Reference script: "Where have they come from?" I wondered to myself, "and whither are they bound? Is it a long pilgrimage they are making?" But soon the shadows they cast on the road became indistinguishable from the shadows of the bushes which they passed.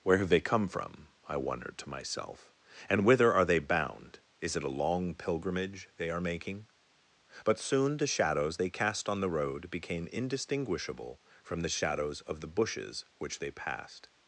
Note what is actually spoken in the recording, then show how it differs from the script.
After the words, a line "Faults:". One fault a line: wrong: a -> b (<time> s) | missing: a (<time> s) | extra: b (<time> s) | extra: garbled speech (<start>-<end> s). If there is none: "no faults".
"Where have they come from?" I wondered to myself, "and whither are they bound? Is it a long pilgrimage they are making?" But soon the shadows they cast on the road became indistinguishable from the shadows of the bushes which they passed.
Faults:
no faults